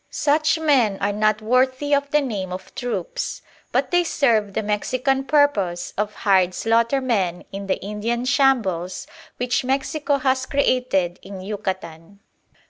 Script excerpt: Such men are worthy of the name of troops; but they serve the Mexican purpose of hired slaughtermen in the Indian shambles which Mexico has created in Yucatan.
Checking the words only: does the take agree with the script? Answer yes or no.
no